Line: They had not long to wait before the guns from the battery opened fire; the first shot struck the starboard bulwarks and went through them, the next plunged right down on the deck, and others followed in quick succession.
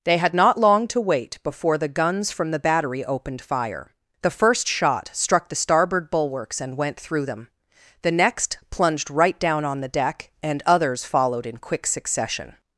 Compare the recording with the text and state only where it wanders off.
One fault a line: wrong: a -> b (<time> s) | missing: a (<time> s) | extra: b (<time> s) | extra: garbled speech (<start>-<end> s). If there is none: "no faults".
no faults